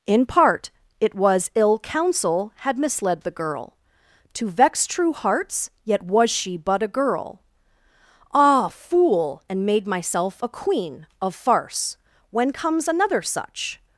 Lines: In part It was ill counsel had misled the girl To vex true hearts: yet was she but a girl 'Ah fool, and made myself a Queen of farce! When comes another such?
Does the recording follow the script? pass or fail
pass